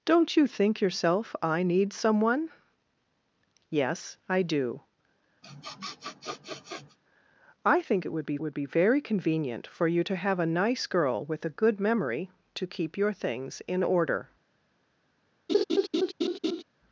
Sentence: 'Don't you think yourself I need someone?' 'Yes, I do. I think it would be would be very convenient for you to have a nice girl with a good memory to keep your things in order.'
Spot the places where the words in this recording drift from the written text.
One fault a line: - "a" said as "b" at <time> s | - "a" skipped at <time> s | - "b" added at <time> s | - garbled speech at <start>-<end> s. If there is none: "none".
none